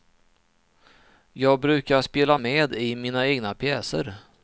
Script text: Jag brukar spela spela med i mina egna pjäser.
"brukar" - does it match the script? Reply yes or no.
yes